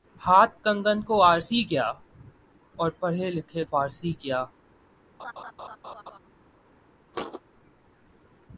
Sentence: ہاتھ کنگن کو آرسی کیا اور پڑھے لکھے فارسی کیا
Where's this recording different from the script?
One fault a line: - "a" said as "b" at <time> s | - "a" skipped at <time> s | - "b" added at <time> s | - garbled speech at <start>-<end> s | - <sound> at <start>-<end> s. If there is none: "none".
- laugh at 5.2-6.2 s
- thud at 7.1-7.4 s